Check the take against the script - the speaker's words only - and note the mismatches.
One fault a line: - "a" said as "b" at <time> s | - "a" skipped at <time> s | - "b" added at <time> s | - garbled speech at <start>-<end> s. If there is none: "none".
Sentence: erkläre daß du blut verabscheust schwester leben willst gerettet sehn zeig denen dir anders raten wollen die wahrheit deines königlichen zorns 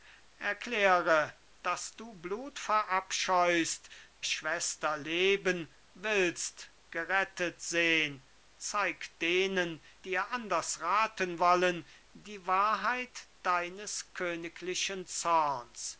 none